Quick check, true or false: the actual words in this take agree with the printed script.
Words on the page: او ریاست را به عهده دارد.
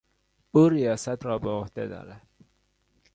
true